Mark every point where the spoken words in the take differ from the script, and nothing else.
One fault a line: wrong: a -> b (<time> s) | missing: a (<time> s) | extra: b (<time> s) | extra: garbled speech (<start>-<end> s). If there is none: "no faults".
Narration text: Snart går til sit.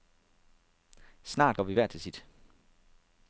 extra: vi hver (1.6 s)